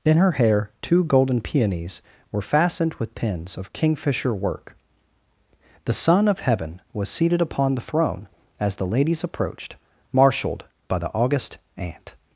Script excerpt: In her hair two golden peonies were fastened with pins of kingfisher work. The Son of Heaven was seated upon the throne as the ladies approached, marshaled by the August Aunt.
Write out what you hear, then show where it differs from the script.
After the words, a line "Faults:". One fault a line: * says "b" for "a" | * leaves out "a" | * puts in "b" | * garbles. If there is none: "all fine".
In her hair two golden peonies were fastened with pins of kingfisher work. The Son of Heaven was seated upon the throne as the ladies approached, marshaled by the August Aunt.
Faults:
all fine